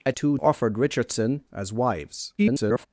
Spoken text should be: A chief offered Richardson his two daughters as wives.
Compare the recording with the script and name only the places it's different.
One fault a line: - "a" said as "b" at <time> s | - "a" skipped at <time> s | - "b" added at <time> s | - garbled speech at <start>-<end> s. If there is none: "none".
- "chief" said as "two" at 0.1 s
- "his two daughters" skipped at 1.4 s
- garbled speech at 2.4-2.9 s